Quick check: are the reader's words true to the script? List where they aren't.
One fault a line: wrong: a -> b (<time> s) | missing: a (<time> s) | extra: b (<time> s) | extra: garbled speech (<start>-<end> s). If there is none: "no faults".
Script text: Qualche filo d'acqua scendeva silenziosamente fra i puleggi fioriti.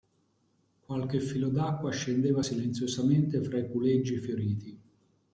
no faults